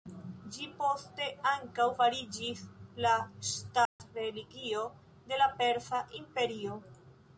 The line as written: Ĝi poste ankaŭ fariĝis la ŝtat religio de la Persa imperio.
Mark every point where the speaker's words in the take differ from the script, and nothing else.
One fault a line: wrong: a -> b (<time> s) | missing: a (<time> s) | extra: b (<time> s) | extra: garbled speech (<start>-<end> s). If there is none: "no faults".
no faults